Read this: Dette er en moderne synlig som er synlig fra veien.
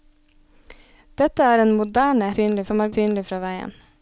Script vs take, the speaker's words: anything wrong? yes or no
no